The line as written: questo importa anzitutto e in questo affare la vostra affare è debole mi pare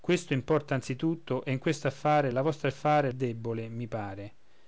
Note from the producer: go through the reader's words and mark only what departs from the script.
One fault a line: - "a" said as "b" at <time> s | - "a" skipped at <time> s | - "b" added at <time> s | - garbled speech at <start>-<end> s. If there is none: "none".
none